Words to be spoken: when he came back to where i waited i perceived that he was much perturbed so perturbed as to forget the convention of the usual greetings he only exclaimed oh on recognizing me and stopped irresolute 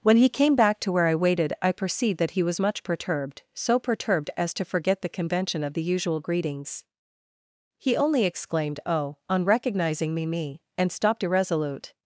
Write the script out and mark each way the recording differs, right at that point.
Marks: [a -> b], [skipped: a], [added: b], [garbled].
when he came back to where i waited i perceived that he was much perturbed so perturbed as to forget the convention of the usual greetings he only exclaimed oh on recognizing me [added: me] and stopped irresolute